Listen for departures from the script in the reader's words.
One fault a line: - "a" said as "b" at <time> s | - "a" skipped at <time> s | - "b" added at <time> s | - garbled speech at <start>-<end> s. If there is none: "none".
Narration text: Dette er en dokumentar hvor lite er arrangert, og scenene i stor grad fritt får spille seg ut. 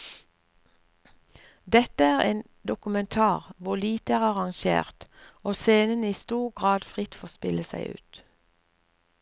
none